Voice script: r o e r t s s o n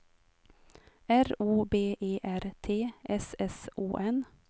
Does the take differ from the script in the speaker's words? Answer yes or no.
yes